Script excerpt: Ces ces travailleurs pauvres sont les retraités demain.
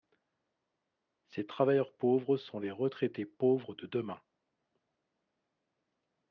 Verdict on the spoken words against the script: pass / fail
fail